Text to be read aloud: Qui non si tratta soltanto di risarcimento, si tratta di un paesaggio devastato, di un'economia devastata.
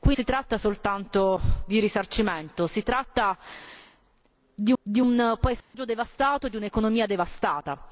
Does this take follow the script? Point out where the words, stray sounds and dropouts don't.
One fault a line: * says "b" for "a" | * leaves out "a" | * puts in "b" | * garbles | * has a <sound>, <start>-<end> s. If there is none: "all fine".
* leaves out "non"
* puts in "di"
* has a dropout, 5.6-5.7 s